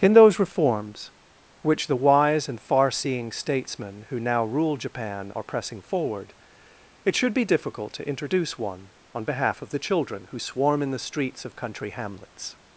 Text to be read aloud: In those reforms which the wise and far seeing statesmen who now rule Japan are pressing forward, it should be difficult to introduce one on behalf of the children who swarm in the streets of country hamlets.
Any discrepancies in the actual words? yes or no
no